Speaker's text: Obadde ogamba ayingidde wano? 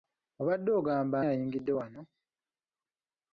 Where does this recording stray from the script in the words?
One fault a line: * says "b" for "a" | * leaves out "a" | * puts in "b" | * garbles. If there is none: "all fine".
all fine